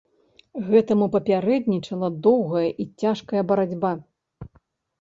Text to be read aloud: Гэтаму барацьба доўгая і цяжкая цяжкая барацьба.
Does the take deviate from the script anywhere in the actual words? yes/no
yes